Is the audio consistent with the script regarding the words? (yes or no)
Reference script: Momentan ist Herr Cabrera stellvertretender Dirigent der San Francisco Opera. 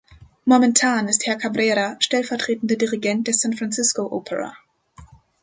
yes